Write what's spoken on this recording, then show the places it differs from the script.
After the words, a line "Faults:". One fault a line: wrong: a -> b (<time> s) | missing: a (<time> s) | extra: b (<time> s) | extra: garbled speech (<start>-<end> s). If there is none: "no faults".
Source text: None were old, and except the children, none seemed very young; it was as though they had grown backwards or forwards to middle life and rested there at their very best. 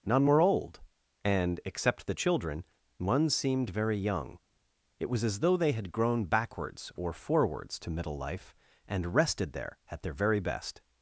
None were old, and except the children, one seemed very young; it was as though they had grown backwards or forwards to middle life and rested there at their very best.
Faults:
wrong: none -> one (3.0 s)